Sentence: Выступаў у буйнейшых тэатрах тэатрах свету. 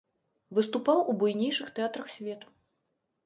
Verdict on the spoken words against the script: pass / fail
fail